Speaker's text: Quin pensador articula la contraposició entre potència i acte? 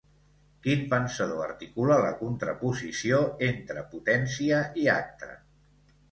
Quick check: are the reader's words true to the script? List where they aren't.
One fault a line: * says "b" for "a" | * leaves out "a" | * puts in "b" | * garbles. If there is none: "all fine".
all fine